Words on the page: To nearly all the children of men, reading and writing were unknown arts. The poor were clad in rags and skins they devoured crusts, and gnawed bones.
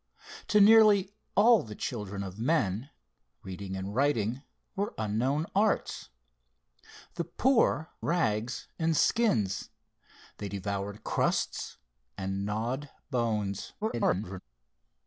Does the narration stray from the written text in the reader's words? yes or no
yes